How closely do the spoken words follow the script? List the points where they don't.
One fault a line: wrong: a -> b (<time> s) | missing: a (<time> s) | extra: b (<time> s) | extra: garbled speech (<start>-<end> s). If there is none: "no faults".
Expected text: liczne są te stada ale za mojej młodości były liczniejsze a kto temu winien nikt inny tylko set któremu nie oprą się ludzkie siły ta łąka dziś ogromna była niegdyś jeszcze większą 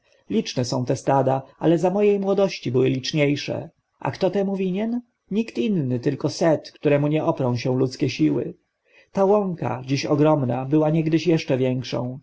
no faults